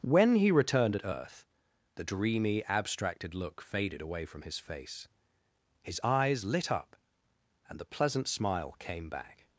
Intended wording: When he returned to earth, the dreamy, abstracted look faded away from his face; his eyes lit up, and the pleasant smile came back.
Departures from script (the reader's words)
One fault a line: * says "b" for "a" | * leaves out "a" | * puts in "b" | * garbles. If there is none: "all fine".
* says "at" for "to"